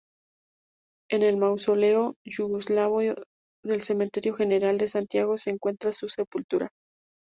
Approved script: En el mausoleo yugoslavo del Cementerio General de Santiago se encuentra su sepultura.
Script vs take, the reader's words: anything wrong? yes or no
no